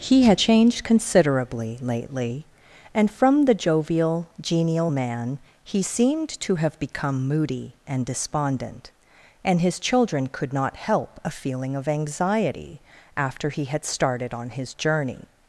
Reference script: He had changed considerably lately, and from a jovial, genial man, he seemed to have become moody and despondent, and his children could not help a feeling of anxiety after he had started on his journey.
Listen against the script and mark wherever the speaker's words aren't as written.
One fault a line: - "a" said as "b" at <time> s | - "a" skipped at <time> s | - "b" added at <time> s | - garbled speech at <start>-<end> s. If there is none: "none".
- "a" said as "the" at 3.5 s